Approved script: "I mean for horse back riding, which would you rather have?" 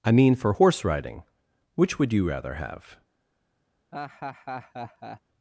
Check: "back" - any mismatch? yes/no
yes